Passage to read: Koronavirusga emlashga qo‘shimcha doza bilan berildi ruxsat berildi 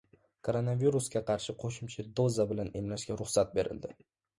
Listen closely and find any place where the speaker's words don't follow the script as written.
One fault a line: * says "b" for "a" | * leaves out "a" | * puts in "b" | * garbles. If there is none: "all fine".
* says "qarshi" for "emlashga"
* says "emlashga" for "berildi"